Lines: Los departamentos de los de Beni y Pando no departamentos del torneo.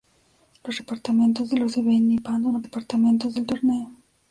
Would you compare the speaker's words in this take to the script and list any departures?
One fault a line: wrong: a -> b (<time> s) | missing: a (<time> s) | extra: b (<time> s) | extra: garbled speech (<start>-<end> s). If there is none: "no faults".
no faults